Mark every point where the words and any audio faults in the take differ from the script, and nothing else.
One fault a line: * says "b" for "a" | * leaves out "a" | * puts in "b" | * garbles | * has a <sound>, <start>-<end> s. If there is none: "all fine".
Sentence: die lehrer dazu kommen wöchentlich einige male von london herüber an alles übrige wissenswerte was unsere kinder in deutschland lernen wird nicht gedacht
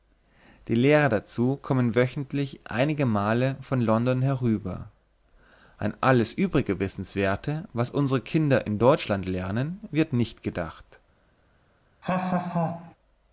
* has a laugh, 12.0-12.9 s